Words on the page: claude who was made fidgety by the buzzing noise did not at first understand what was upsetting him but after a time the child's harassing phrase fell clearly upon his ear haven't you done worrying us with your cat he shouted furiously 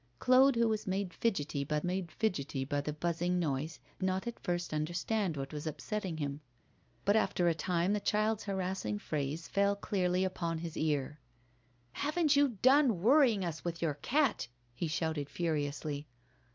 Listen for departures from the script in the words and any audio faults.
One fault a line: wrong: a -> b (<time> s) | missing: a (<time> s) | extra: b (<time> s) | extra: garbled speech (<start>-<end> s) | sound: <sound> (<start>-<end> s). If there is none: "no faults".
extra: made fidgety by (1.8 s)
missing: did (3.8 s)